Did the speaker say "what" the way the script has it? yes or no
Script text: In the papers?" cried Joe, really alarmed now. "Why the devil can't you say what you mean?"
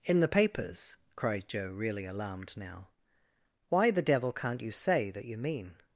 no